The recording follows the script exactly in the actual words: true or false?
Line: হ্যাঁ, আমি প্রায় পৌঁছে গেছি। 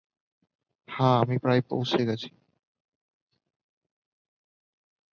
true